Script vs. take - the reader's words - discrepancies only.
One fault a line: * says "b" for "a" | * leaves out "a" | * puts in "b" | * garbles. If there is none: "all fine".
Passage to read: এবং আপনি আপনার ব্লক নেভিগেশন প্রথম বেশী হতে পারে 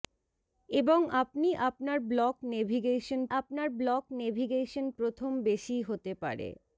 * puts in "আপনার ব্লক নেভিগেশন"